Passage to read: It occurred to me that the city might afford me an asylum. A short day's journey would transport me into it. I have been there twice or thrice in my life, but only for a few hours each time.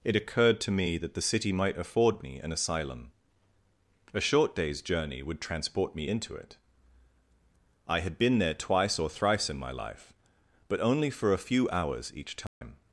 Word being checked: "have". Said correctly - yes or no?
no